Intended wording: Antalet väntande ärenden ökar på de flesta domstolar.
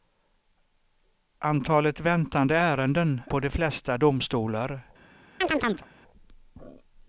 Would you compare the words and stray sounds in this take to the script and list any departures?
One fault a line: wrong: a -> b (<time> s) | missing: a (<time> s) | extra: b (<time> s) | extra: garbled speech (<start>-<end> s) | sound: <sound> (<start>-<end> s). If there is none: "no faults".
missing: ökar (3.2 s)
sound: chirp (5.4-5.9 s)